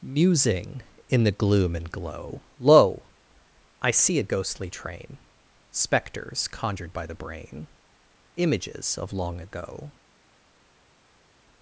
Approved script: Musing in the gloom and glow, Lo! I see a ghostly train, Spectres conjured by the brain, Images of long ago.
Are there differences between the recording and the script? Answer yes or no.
no